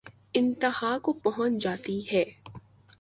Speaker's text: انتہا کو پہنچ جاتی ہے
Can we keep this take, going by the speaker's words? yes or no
yes